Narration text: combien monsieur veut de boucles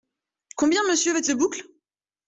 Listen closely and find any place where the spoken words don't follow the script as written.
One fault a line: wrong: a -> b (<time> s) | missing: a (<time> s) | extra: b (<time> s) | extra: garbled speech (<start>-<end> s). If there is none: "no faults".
no faults